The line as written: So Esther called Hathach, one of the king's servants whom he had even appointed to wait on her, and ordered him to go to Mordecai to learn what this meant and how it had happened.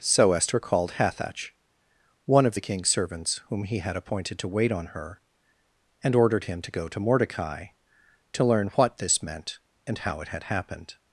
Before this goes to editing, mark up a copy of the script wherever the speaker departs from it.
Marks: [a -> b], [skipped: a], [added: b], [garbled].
So Esther called Hathach, one of the king's servants whom he had [skipped: even] appointed to wait on her, and ordered him to go to Mordecai to learn what this meant and how it had happened.